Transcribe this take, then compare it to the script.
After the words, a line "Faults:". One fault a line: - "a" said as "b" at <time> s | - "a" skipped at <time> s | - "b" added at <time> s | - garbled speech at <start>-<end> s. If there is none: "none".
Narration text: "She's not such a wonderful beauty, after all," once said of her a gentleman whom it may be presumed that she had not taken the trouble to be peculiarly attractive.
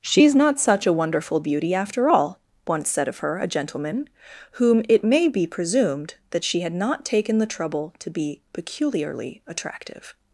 "She's not such a wonderful beauty, after all," once said of her a gentleman whom it may be presumed that she had not taken the trouble to be peculiarly attractive.
Faults:
none